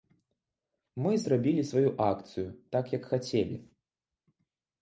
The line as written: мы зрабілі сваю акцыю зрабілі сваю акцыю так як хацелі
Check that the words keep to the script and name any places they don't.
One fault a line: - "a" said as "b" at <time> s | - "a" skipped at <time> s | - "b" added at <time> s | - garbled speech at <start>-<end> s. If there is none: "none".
- "зрабілі сваю акцыю" skipped at 2.5 s